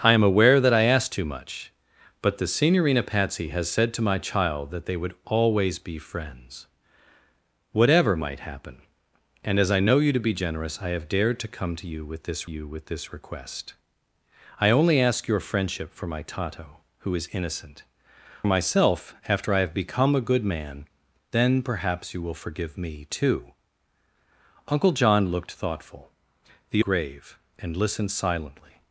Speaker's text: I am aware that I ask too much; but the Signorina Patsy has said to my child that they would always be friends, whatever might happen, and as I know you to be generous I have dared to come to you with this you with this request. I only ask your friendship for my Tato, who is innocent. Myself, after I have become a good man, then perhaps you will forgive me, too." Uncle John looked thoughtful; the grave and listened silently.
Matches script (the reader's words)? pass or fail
pass